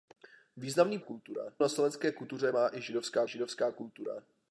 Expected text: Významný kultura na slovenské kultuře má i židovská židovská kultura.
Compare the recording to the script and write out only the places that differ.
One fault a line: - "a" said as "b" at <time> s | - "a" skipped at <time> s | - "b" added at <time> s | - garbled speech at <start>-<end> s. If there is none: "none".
none